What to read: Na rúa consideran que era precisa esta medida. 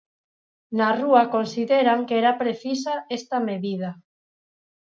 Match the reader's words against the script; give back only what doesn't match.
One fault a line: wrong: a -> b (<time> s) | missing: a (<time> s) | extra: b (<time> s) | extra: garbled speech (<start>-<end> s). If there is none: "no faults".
no faults